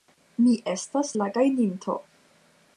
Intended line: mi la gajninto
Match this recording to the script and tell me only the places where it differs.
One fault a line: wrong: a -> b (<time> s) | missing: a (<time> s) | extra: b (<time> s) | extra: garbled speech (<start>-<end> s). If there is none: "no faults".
extra: estas (0.7 s)